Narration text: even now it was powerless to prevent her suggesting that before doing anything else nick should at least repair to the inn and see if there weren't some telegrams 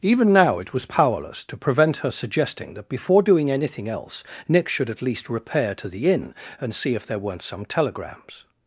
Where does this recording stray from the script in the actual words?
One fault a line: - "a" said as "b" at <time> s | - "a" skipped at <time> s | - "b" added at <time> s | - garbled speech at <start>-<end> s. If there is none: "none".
none